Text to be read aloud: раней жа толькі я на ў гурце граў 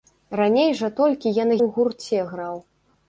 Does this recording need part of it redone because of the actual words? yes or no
no